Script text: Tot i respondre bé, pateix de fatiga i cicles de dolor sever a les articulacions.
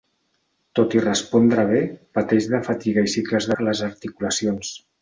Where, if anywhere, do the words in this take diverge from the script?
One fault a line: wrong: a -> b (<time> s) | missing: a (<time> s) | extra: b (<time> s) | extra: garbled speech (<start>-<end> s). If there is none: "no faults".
missing: de dolor sever (3.5 s)